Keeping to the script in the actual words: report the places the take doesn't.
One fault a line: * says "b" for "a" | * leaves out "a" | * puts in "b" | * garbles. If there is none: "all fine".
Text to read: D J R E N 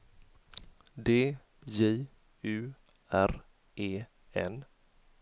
* puts in "U"